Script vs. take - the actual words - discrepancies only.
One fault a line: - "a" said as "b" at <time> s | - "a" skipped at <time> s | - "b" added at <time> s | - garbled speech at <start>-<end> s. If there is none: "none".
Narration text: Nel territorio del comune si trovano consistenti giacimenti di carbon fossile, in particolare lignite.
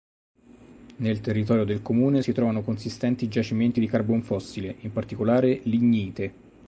none